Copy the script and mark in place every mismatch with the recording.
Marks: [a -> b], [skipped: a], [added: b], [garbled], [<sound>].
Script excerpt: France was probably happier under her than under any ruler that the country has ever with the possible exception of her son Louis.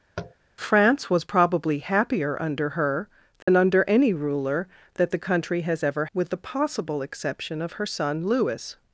[tap] France was probably happier under her than [dropout] under any ruler that the country has ever with the possible exception of her son Louis.